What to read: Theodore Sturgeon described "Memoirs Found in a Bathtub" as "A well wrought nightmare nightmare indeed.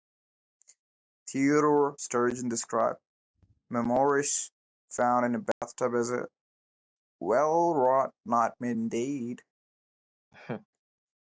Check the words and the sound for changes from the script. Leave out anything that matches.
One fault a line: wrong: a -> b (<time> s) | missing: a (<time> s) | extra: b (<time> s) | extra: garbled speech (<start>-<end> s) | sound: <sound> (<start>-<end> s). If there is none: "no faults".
sound: dropout (5.5-5.6 s)
missing: nightmare (8.7 s)
sound: laugh (10.3-10.7 s)